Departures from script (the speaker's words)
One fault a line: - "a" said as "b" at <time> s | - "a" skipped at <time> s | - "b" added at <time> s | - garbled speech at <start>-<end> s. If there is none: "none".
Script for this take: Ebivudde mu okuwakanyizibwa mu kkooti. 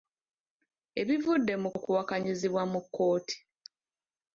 none